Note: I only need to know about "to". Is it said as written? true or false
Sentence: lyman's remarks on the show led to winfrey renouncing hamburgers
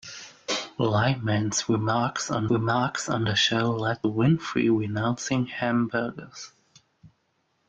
false